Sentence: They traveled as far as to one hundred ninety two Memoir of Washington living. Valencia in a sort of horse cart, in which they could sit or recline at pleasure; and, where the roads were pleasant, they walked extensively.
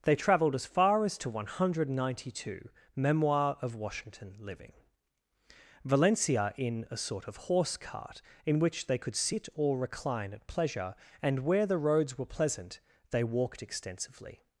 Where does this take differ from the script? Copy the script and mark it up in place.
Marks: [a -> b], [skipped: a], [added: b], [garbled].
They traveled as far as to one hundred ninety two Memoir of Washington living. Valencia in a sort of horse cart, in which they could sit or recline at pleasure; and, where the roads were pleasant, they walked extensively.